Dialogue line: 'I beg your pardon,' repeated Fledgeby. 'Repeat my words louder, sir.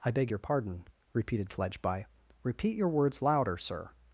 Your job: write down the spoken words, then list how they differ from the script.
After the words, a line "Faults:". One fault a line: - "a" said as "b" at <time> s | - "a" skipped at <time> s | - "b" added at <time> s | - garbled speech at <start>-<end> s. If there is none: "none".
'I beg your pardon,' repeated Fledgeby. 'Repeat your words louder, sir.
Faults:
- "my" said as "your" at 2.8 s